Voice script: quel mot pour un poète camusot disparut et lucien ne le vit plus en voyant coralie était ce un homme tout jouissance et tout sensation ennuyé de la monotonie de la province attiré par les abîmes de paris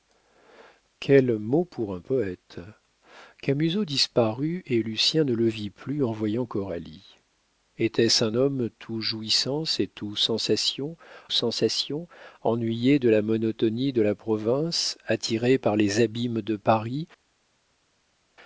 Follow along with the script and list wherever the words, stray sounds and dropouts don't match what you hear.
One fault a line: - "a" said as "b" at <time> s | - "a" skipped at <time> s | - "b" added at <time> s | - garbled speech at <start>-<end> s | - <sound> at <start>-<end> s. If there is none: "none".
- "sensation" added at 11.3 s